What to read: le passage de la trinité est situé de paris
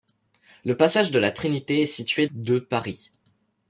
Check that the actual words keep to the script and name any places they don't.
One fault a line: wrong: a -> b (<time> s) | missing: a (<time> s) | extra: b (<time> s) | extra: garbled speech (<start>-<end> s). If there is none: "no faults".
no faults